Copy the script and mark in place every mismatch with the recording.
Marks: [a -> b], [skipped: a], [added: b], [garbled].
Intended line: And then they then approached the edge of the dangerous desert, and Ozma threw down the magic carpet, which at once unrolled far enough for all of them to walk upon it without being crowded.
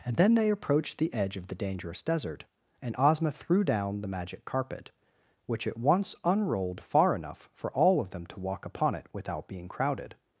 And then they [skipped: then] approached the edge of the dangerous desert, and Ozma threw down the magic carpet, which at once unrolled far enough for all of them to walk upon it without being crowded.